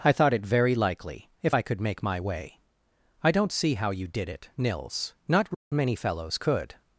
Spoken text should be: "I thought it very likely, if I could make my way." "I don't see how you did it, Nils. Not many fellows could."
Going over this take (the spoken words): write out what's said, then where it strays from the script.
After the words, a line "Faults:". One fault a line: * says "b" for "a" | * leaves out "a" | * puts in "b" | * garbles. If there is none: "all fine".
"I thought it very likely, if I could make my way." "I don't see how you did it, Nils. Not many fellows could."
Faults:
all fine